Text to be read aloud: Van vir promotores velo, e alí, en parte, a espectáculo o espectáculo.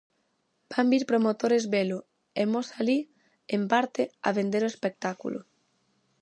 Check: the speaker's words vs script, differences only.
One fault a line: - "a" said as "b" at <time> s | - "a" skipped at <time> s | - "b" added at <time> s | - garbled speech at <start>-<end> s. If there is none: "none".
- "mos" added at 2.5 s
- "espectáculo" said as "vender" at 4.4 s